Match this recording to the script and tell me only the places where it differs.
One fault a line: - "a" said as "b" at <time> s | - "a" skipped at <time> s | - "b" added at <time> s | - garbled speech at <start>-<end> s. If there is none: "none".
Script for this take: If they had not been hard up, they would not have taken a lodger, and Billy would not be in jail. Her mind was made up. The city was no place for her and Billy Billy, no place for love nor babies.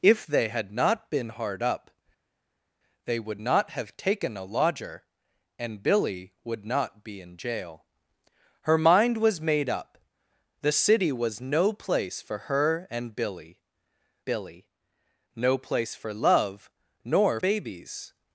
none